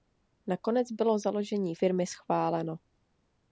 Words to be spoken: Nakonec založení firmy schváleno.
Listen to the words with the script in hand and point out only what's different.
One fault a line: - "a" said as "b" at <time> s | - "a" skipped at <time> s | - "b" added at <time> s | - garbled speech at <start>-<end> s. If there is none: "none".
- "bylo" added at 0.9 s